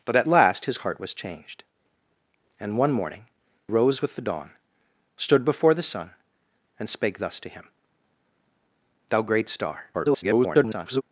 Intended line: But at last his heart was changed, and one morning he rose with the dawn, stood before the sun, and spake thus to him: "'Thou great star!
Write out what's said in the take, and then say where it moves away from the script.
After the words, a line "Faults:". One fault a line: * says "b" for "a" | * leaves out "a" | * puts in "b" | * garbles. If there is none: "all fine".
But at last his heart was changed, and one morning rose with the dawn, stood before the sun, and spake thus to him: "'Thou great star! [garbled]
Faults:
* leaves out "he"
* garbles